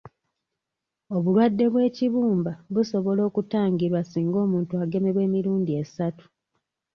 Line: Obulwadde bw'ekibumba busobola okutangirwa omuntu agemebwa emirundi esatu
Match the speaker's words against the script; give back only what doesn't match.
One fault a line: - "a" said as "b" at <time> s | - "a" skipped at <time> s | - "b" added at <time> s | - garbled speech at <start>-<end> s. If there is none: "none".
- "singa" added at 4.0 s